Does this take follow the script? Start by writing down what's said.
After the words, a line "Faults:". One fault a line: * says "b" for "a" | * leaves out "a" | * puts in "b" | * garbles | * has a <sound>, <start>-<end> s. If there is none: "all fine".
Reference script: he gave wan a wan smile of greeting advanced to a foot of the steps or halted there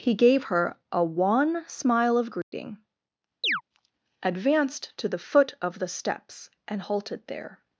he gave her a wan smile of greeting advanced to the foot of the steps and halted there
Faults:
* says "her" for "wan"
* has a dropout, 2.4-2.5 s
* has a chirp, 3.4-3.6 s
* says "the" for "a"
* says "and" for "or"